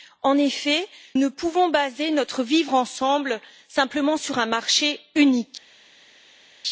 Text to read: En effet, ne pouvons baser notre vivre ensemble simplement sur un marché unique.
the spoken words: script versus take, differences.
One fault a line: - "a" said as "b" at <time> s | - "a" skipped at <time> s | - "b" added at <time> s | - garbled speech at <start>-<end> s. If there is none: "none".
none